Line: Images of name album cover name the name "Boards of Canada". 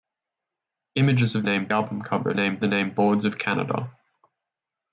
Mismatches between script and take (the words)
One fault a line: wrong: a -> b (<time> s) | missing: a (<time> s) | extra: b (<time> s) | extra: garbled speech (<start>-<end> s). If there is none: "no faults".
no faults